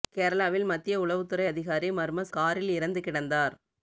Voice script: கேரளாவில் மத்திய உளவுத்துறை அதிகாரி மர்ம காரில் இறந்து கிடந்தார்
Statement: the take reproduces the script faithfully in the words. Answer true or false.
true